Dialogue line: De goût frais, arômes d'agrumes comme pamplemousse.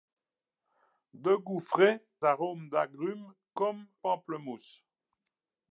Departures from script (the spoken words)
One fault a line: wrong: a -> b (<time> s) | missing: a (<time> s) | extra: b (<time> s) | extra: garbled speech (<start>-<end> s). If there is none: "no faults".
no faults